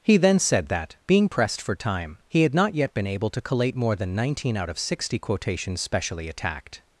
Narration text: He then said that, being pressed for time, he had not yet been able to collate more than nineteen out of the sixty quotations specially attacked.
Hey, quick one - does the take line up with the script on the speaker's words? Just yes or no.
no